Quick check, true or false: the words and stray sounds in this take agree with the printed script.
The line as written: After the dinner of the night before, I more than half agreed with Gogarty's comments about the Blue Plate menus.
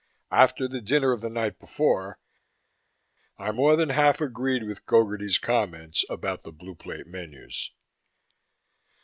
true